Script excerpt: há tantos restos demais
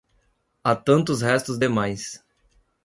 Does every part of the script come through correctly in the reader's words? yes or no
yes